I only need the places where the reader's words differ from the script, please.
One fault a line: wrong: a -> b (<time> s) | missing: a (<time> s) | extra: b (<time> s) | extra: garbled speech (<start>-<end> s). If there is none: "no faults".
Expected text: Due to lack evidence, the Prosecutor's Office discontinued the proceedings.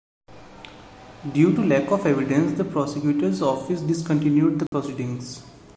extra: of (1.9 s)